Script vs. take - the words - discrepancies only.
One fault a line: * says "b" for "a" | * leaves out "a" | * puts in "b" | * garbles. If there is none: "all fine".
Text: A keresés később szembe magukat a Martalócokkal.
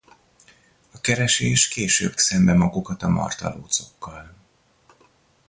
all fine